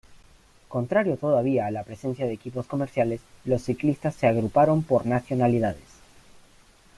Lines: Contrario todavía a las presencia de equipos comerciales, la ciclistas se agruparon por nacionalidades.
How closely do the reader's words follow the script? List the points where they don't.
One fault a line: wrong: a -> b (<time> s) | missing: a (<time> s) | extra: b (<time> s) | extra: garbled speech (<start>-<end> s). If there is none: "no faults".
wrong: las -> la (1.7 s)
wrong: la -> los (3.5 s)